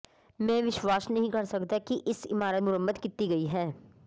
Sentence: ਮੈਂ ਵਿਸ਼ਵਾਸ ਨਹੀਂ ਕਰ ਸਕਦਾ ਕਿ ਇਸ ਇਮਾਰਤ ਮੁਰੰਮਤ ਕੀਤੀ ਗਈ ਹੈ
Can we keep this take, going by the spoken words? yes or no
yes